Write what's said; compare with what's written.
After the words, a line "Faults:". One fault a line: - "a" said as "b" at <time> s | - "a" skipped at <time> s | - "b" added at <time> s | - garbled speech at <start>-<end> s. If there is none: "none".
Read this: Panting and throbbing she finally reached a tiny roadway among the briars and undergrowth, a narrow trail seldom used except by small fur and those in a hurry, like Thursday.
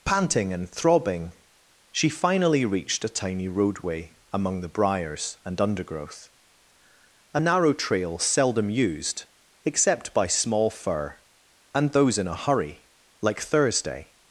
Panting and throbbing she finally reached a tiny roadway among the briars and undergrowth, a narrow trail seldom used except by small fur and those in a hurry, like Thursday.
Faults:
none